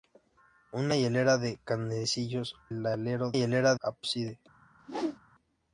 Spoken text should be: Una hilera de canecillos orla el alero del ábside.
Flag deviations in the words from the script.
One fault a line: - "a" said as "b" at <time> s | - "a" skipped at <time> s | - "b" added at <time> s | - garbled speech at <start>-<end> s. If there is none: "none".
- "orla" skipped at 2.5 s
- "del" said as "hilera" at 3.3 s